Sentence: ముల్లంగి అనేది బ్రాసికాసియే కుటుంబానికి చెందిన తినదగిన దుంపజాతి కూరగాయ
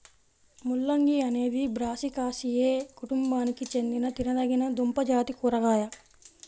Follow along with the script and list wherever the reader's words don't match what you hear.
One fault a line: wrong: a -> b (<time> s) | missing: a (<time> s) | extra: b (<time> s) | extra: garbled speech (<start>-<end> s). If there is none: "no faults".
no faults